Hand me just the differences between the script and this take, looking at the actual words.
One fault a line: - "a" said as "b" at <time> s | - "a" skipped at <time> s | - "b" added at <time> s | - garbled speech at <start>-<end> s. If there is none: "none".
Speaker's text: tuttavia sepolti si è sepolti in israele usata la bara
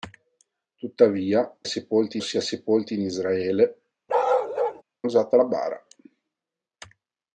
none